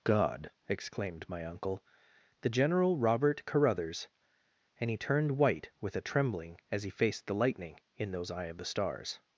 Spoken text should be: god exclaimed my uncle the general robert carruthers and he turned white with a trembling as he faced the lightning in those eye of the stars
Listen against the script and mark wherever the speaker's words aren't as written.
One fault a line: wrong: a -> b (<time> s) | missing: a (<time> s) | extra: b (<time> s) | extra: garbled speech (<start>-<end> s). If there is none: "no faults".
no faults